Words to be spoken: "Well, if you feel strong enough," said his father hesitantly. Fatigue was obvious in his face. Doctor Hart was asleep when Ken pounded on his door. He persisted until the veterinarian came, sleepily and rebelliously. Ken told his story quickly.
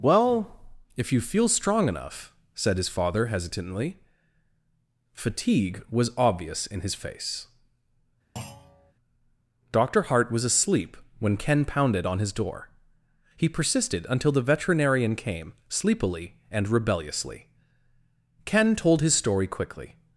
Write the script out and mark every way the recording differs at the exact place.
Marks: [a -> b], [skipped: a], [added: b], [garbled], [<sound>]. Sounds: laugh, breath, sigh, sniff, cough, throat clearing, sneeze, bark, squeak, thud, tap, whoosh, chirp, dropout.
"Well, if you feel strong enough," said his father hesitantly. Fatigue was obvious in his face. [thud] Doctor Hart was asleep when Ken pounded on his door. He persisted until the veterinarian came, sleepily and rebelliously. Ken told his story quickly.